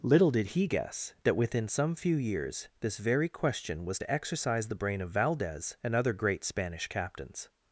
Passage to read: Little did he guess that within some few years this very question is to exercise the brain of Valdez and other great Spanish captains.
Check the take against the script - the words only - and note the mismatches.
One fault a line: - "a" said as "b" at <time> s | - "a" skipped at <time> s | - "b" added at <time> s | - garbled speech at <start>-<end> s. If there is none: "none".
- "is" said as "was" at 3.8 s